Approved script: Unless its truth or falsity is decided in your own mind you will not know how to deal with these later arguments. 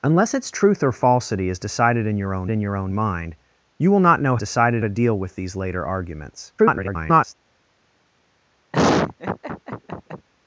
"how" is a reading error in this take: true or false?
true